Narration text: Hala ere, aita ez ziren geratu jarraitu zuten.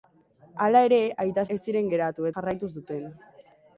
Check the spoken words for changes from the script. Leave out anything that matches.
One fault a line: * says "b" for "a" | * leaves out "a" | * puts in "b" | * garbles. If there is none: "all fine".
all fine